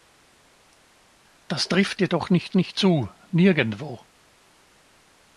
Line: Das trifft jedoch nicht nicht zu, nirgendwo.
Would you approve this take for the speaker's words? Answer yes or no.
yes